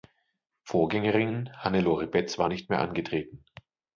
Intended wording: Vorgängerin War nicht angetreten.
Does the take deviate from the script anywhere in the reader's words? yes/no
yes